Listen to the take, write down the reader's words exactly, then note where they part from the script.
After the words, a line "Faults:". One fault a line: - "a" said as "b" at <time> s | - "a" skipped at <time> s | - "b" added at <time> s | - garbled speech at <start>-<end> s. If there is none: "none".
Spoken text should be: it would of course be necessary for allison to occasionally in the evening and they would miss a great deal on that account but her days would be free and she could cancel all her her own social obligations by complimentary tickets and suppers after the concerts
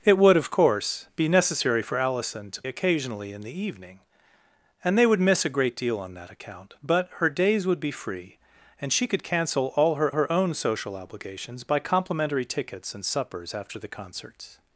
it would of course be necessary for allison to occasionally in the evening and they would miss a great deal on that account but her days would be free and she could cancel all her her own social obligations by complimentary tickets and suppers after the concerts
Faults:
none